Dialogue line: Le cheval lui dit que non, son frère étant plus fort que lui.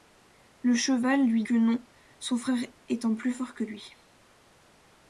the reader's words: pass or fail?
fail